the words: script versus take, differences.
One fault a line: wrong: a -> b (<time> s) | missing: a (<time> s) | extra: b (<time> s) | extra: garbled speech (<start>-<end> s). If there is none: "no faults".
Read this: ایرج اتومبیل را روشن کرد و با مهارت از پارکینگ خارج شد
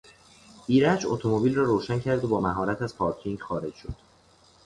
no faults